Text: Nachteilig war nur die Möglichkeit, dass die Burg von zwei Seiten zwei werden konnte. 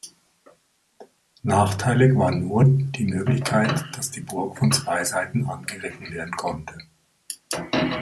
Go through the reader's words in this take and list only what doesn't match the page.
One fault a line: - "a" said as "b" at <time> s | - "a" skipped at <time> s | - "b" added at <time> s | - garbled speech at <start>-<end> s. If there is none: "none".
- "zwei" said as "angegriffen" at 5.5 s